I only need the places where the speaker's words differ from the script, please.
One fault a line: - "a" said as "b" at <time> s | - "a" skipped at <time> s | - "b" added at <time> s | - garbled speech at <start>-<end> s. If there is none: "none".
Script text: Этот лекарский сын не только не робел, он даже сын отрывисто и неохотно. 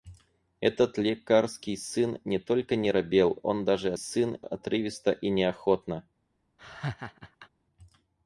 none